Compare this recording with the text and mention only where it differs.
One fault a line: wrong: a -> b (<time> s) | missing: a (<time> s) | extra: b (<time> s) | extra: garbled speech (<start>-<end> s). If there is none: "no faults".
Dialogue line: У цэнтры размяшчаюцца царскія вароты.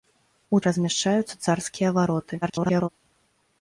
missing: цэнтры (0.6 s)
extra: garbled speech (2.4-2.9 s)